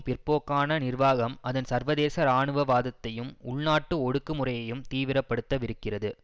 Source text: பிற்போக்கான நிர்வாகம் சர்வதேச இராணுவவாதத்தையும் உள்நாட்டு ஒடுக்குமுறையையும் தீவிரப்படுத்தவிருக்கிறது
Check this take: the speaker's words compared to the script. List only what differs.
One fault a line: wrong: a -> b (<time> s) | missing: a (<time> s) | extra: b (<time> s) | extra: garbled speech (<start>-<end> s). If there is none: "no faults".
extra: அதன் (1.4 s)